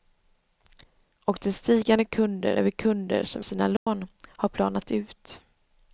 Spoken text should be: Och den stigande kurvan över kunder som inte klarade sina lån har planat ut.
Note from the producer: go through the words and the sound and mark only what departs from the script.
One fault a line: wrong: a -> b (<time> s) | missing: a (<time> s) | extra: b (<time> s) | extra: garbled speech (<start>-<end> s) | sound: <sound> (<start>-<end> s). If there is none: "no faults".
wrong: kurvan -> kunder (2.0 s)
missing: inte klarade (3.5 s)
sound: dropout (3.8-3.9 s)